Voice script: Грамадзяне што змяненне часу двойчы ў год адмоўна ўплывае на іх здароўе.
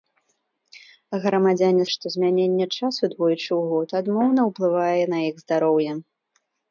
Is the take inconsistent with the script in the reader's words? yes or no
no